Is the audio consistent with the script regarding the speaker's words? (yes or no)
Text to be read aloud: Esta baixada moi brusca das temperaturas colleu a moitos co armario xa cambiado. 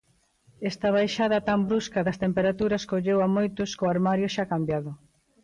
no